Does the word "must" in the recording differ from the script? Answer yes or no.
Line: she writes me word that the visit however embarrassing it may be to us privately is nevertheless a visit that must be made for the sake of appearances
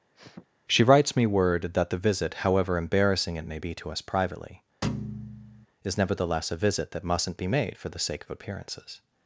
yes